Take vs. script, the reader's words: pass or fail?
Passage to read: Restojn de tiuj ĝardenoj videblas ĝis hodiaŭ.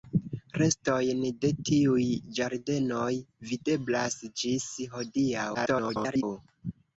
fail